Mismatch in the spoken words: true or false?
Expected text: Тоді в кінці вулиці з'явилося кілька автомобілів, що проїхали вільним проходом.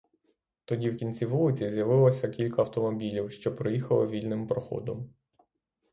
false